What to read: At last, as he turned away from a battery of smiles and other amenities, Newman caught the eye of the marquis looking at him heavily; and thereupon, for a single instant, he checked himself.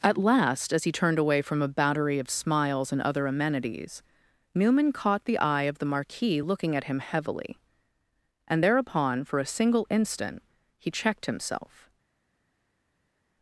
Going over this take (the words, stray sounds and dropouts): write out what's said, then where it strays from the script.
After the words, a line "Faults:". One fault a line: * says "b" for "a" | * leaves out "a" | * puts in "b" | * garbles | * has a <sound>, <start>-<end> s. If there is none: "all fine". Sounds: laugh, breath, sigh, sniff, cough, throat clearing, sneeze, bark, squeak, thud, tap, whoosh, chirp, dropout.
At last, as he turned away from a battery of smiles and other amenities, Newman caught the eye of the marquis looking at him heavily; and thereupon, for a single instant, he checked himself.
Faults:
all fine